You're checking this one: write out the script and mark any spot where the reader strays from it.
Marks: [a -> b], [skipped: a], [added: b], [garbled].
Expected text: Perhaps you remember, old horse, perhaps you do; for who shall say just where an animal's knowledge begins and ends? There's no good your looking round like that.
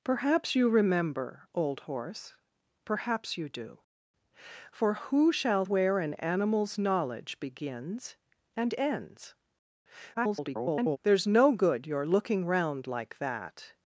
Perhaps you remember, old horse, perhaps you do; for who shall [skipped: say just] where an animal's knowledge begins and ends? [garbled] There's no good your looking round like that.